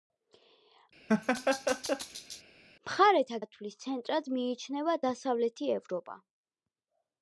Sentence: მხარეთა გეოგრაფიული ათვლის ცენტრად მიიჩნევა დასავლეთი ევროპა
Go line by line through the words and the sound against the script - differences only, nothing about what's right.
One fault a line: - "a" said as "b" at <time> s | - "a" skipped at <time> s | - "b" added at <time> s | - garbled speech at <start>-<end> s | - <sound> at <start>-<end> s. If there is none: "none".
- laugh at 1.1-2.4 s
- "გეოგრაფიული" skipped at 3.4 s